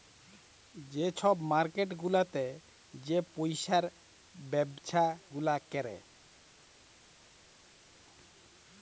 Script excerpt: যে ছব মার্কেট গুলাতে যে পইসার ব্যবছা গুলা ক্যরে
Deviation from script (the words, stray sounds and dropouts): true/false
false